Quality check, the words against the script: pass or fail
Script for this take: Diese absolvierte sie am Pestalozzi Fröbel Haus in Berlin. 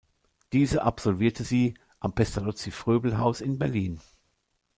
pass